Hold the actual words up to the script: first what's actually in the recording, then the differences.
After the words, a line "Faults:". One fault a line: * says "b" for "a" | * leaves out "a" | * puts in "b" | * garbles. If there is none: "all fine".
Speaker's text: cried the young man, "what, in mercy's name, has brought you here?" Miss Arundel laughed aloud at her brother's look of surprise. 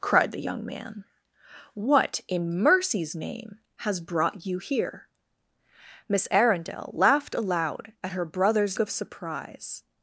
cried the young man, "what, in mercy's name, has brought you here?" Miss Arundel laughed aloud at her brother's of surprise.
Faults:
* leaves out "look"